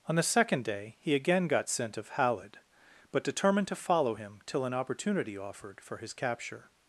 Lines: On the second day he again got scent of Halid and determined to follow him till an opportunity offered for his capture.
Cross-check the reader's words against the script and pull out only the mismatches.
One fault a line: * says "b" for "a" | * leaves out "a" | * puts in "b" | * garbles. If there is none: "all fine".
* says "but" for "and"